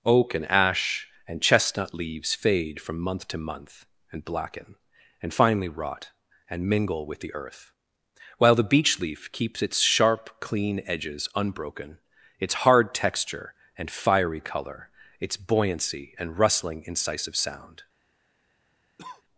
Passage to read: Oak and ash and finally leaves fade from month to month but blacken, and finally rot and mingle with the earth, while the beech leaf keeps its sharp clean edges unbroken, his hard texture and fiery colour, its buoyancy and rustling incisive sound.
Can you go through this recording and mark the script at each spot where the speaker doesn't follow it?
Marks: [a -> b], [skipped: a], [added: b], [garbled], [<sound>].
Oak and ash and [finally -> chestnut] leaves fade from month to month [but -> and] blacken, and finally rot and mingle with the earth, while the beech leaf keeps its sharp clean edges unbroken, [his -> its] hard texture and fiery colour, its buoyancy and rustling incisive sound. [cough]